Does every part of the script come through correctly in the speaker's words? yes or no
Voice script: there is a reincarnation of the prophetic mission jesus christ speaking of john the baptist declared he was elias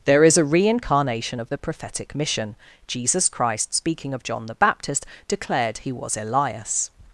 yes